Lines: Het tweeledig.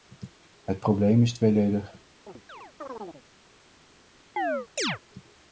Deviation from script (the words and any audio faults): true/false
true